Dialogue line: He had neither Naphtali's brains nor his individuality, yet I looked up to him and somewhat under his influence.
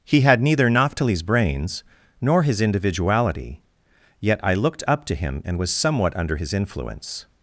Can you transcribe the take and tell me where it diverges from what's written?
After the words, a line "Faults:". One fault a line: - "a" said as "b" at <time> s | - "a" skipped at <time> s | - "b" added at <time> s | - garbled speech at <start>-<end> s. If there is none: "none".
He had neither Naphtali's brains nor his individuality, yet I looked up to him and was somewhat under his influence.
Faults:
- "was" added at 5.6 s